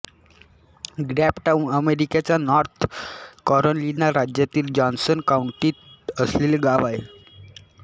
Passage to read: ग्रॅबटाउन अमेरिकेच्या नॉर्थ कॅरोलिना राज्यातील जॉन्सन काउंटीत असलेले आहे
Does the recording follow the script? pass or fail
fail